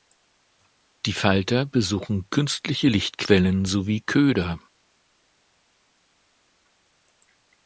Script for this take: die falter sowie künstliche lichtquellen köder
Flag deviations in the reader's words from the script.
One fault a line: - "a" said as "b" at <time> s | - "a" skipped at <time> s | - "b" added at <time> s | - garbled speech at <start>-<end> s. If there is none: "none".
- "sowie" said as "besuchen" at 1.7 s
- "sowie" added at 3.6 s